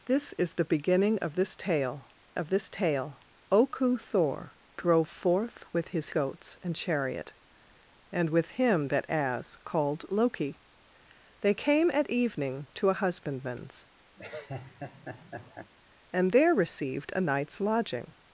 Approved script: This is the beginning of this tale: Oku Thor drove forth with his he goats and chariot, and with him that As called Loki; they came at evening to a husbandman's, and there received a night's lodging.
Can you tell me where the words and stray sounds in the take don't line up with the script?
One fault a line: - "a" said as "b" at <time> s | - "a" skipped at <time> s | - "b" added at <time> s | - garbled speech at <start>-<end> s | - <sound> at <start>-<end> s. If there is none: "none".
- "of this tale" added at 2.3 s
- "he" skipped at 6.1 s
- laugh at 14.2-15.7 s